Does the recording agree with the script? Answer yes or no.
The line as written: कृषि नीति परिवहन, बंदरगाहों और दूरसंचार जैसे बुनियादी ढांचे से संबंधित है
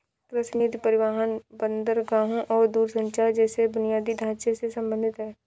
yes